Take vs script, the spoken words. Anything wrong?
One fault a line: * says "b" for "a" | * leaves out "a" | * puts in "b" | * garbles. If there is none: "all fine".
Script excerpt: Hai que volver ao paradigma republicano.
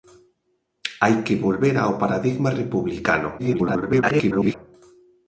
* garbles